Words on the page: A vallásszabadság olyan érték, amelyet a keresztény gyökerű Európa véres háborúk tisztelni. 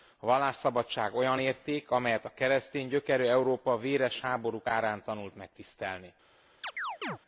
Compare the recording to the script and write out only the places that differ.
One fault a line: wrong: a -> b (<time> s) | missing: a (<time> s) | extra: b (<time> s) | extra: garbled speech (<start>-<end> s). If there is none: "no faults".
extra: árán tanult meg (4.7 s)